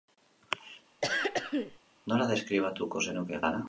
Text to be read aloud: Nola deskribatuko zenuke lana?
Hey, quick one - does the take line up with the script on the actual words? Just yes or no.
yes